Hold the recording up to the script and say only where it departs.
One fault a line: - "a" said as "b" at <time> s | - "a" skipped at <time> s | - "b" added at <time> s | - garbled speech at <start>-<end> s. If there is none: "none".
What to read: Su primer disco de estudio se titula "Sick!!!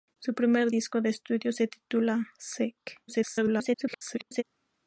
- garbled speech at 3.1-4.4 s